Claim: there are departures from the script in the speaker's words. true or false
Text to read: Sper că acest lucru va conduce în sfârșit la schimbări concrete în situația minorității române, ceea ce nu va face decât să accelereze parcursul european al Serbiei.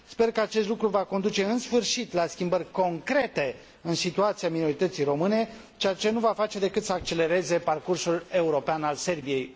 false